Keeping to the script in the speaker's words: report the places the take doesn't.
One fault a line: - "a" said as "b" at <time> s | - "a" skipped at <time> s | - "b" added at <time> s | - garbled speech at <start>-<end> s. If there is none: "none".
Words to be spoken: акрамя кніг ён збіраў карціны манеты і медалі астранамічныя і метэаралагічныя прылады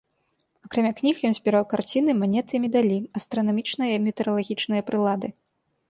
none